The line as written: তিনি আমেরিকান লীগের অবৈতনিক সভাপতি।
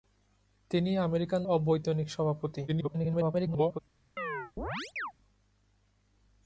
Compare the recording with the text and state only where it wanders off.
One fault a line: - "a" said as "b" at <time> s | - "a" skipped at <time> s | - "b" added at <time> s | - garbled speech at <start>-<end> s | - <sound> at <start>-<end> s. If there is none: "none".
- "লীগের" skipped at 1.4 s
- garbled speech at 2.7-3.8 s
- chirp at 4.2-5.1 s